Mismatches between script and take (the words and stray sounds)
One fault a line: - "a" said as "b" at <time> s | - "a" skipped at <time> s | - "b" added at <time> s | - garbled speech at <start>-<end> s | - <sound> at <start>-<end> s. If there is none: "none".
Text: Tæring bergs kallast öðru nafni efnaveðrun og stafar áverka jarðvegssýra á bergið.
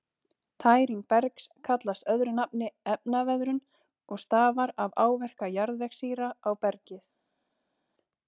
- "af" added at 4.9 s